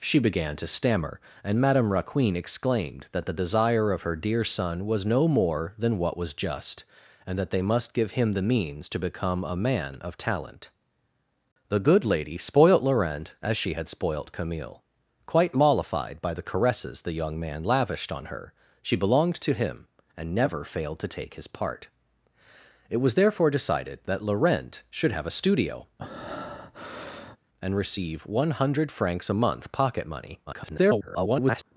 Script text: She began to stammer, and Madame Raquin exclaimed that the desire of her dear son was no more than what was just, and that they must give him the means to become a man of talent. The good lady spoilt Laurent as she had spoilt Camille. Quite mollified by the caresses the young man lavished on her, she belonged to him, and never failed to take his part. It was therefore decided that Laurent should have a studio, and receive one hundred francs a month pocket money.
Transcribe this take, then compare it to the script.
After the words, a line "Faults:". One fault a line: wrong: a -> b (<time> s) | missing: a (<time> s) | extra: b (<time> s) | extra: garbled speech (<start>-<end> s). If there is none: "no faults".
She began to stammer, and Madame Raquin exclaimed that the desire of her dear son was no more than what was just, and that they must give him the means to become a man of talent. The good lady spoilt Laurent as she had spoilt Camille. Quite mollified by the caresses the young man lavished on her, she belonged to him, and never failed to take his part. It was therefore decided that Laurent should have a studio, and receive one hundred francs a month pocket money. [garbled]
Faults:
extra: garbled speech (30.5-31.6 s)